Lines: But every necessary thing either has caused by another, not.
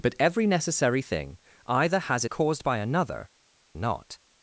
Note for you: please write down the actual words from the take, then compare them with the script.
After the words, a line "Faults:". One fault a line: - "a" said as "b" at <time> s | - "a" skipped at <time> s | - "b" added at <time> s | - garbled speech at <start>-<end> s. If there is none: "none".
But every necessary thing either has caused by another, not.
Faults:
none